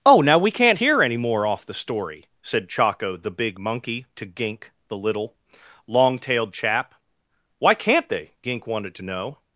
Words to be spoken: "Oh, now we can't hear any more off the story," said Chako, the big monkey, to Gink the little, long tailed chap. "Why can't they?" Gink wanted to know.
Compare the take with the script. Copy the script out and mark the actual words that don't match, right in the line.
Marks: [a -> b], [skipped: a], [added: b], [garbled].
"Oh, now we can't hear any more off the story," said Chako, the big monkey, to Gink the little, long tailed chap. "Why can't they?" Gink wanted to know.